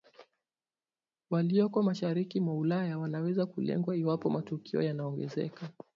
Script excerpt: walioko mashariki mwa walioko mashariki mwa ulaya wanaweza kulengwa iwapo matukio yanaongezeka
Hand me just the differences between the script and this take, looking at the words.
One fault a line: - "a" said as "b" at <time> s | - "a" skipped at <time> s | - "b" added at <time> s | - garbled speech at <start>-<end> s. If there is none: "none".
- "walioko mashariki mwa" skipped at 2.5 s